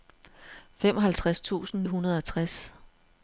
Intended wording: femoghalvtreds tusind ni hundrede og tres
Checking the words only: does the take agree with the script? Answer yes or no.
no